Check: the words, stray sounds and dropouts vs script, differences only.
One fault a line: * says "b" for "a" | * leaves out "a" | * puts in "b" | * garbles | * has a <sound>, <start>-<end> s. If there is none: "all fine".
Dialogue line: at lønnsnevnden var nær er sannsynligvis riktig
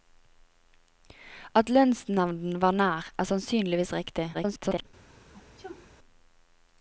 * garbles
* has a sneeze, 5.3-5.9 s